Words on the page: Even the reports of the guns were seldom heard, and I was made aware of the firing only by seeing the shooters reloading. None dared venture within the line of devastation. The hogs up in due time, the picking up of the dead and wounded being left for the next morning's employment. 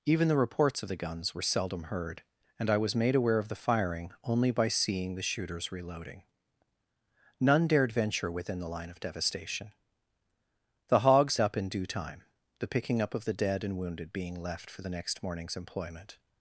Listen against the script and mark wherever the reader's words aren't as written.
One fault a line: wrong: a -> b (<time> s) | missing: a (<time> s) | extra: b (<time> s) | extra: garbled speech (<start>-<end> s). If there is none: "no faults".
no faults